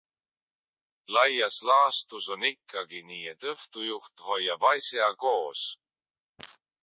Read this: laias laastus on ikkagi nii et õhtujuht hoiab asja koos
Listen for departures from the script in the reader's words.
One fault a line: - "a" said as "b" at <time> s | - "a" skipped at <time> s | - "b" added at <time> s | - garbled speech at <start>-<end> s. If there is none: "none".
none